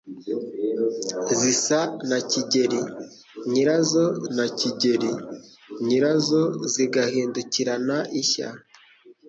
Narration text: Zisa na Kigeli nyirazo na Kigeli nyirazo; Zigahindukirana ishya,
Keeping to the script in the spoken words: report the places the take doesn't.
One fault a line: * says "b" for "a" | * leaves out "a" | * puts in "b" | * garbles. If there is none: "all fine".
all fine